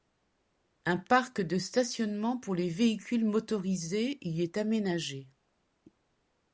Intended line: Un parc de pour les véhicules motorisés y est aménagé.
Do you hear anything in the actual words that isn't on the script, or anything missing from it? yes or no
yes